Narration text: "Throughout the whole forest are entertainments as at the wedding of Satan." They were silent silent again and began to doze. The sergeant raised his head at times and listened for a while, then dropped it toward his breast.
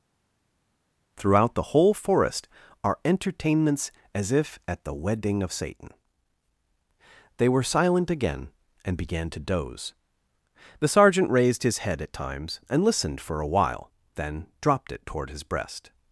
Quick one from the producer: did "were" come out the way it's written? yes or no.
yes